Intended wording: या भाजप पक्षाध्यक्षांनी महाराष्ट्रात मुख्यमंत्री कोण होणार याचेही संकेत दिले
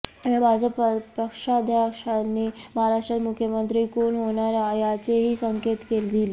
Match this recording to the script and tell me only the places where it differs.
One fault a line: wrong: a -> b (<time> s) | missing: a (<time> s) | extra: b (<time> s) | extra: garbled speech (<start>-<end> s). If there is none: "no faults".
no faults